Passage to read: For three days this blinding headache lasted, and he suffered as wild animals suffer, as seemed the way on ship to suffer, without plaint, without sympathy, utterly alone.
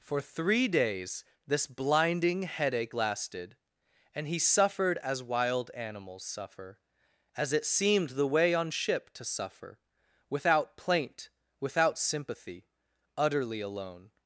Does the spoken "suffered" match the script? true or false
true